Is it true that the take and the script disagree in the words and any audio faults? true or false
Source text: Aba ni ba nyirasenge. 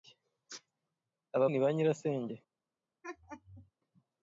true